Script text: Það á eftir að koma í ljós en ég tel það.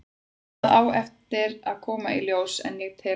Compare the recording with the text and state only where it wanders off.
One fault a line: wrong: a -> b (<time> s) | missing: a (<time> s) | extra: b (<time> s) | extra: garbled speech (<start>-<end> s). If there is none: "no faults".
no faults